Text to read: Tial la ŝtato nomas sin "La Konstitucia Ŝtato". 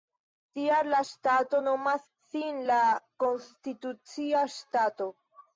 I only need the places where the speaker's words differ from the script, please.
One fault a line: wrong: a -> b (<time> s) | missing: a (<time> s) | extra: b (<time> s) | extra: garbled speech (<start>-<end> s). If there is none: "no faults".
no faults